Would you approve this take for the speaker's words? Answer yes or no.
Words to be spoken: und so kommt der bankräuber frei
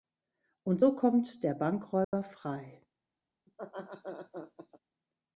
yes